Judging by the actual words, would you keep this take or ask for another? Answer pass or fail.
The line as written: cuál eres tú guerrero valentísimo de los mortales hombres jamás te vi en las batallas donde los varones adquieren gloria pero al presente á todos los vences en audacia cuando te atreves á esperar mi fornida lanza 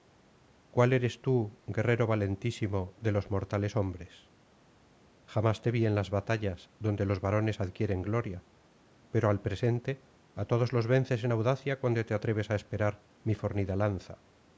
pass